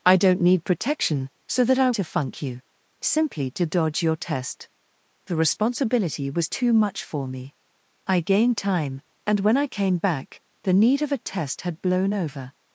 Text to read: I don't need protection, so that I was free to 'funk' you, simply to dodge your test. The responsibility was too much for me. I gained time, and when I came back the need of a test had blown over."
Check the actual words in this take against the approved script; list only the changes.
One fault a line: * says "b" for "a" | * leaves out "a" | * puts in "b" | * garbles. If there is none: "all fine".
* leaves out "was free"